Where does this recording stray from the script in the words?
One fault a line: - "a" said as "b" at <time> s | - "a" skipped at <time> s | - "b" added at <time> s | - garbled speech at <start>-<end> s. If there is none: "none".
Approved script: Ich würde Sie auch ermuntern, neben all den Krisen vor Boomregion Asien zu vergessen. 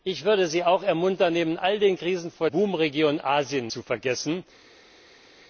none